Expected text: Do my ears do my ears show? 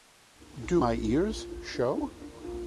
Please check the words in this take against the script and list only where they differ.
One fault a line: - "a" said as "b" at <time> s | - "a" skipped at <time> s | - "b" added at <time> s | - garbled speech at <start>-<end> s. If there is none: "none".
- "do my ears" skipped at 1.5 s